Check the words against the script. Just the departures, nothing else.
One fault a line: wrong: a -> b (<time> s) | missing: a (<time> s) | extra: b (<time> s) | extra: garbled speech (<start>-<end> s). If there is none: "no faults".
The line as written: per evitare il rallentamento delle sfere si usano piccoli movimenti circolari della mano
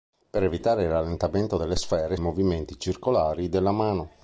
missing: si usano piccoli (2.2 s)